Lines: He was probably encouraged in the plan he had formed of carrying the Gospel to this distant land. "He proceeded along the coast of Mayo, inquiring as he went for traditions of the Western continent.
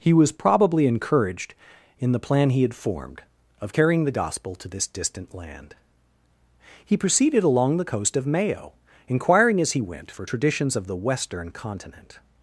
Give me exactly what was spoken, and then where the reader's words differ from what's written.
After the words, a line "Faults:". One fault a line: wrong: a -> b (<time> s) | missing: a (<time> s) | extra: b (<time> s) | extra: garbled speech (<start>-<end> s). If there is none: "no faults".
He was probably encouraged in the plan he had formed of carrying the Gospel to this distant land. "He proceeded along the coast of Mayo, inquiring as he went for traditions of the Western continent.
Faults:
no faults